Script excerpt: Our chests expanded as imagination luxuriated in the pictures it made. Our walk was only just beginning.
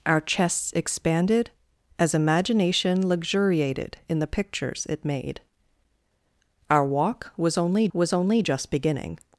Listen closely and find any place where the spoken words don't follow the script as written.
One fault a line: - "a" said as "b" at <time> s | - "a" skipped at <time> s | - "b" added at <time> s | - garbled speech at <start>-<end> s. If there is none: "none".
- "was only" added at 7.9 s